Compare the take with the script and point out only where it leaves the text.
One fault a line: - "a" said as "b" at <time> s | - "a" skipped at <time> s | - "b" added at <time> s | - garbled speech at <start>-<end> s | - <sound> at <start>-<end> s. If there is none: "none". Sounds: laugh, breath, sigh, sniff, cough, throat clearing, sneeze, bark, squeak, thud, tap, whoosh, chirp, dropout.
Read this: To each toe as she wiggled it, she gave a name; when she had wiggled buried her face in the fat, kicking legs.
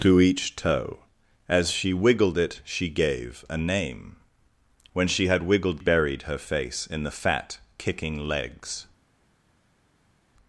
none